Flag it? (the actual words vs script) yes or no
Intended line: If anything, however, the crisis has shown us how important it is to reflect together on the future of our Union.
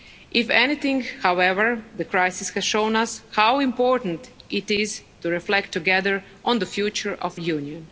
yes